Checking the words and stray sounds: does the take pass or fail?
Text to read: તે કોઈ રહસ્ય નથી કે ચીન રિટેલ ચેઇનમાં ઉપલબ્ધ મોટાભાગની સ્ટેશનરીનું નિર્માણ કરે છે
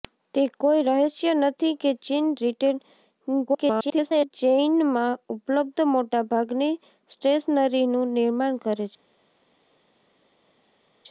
fail